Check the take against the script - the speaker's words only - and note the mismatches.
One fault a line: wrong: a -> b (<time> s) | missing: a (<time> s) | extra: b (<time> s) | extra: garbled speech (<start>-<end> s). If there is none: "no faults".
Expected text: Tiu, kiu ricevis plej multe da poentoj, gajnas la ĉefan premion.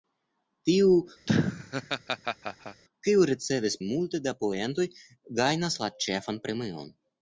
missing: plej (3.8 s)